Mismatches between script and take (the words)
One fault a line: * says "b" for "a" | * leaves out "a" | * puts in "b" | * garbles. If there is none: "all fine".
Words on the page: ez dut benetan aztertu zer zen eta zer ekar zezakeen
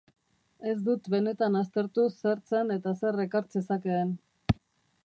all fine